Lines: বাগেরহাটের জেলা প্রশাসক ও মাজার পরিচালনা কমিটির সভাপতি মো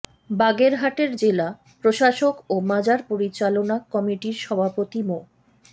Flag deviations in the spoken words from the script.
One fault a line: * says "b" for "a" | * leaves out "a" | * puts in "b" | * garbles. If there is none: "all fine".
all fine